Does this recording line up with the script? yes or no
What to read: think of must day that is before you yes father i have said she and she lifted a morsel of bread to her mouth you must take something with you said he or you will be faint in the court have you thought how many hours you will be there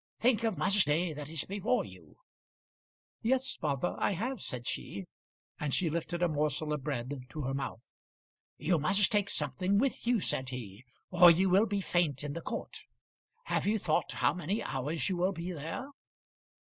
yes